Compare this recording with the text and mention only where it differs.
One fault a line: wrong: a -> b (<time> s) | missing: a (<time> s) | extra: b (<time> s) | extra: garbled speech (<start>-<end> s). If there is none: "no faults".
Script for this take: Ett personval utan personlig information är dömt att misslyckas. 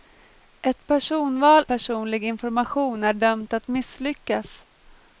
missing: utan (1.6 s)